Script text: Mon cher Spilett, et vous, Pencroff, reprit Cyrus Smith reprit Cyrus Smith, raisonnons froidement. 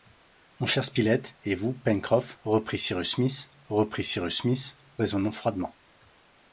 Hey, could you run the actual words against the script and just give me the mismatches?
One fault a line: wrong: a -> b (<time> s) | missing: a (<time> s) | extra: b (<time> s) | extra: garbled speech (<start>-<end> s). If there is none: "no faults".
no faults